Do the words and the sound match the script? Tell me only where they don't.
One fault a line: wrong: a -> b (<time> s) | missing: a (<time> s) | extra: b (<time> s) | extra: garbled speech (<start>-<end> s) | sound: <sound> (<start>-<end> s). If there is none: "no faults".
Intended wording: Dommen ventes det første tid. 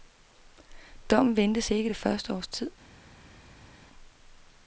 extra: ikke (1.7 s)
extra: års (2.3 s)